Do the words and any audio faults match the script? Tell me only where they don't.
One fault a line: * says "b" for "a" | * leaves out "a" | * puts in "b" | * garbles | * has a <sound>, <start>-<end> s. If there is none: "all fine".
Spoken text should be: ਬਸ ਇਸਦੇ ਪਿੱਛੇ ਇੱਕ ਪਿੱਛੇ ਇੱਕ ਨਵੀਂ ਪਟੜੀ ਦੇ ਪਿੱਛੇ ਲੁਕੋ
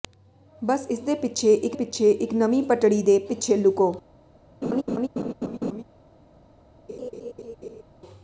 * has a laugh, 4.6-5.8 s
* has a laugh, 6.9-7.8 s